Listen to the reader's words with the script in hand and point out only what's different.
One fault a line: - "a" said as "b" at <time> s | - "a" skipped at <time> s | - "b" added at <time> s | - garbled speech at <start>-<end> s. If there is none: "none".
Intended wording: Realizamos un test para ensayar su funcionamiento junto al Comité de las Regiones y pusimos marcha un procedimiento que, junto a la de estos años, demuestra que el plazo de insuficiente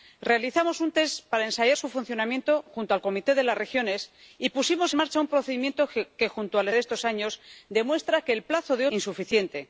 none